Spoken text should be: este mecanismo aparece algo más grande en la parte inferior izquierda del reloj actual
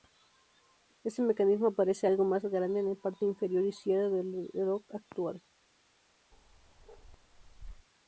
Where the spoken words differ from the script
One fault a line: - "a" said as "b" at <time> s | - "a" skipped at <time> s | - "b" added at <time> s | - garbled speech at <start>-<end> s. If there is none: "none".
none